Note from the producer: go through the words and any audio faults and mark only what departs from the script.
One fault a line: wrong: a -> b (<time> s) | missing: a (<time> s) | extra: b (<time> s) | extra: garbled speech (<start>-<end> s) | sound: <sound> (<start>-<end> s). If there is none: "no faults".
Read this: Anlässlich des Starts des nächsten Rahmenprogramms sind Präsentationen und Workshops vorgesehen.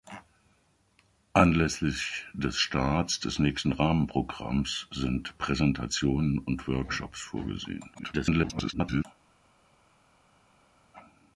extra: garbled speech (7.9-9.1 s)